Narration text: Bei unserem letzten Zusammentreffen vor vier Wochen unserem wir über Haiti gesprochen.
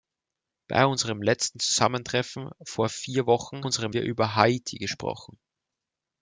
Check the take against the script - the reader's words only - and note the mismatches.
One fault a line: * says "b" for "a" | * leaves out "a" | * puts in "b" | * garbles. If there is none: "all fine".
all fine